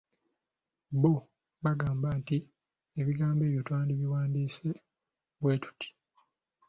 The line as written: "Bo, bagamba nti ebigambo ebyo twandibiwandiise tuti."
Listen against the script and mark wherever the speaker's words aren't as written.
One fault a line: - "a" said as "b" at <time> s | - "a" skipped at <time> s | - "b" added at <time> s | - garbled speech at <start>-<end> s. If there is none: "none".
- "bwe" added at 5.4 s